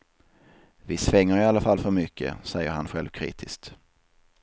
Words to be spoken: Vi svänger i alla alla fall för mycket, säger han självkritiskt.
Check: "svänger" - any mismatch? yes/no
no